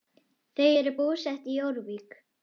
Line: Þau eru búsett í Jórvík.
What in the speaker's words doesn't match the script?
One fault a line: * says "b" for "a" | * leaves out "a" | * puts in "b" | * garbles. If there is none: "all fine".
all fine